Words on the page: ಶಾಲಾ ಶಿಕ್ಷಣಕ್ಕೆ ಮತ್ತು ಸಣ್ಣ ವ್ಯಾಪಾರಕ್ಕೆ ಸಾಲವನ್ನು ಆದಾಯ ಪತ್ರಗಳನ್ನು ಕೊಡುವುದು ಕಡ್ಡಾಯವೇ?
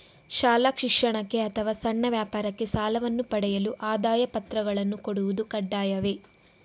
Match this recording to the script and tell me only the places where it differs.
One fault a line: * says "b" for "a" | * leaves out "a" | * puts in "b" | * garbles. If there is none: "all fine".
* says "ಅಥವಾ" for "ಮತ್ತು"
* puts in "ಪಡೆಯಲು"